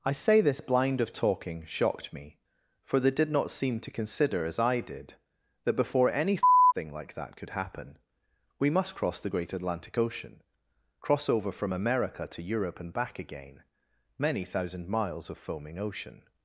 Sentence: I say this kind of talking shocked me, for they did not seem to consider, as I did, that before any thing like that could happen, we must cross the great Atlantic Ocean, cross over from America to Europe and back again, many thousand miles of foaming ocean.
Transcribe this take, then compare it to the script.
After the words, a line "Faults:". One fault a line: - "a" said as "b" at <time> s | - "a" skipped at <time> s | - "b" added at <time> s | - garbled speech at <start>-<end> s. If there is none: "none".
I say this blind of talking shocked me, for they did not seem to consider, as I did, that before any thing like that could happen, we must cross the great Atlantic Ocean, cross over from America to Europe and back again, many thousand miles of foaming ocean.
Faults:
- "kind" said as "blind" at 0.6 s